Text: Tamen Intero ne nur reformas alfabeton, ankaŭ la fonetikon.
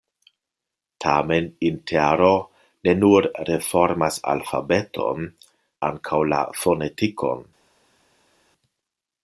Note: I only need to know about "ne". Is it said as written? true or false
true